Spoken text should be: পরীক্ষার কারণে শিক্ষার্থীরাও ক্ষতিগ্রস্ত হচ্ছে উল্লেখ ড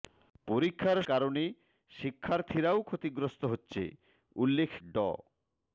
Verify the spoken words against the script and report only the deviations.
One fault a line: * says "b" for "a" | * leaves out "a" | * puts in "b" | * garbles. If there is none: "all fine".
all fine